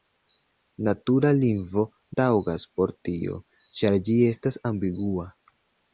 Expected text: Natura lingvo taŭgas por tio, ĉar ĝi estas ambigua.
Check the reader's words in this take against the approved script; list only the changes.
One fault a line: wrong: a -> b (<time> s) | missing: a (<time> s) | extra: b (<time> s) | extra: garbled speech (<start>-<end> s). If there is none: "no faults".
no faults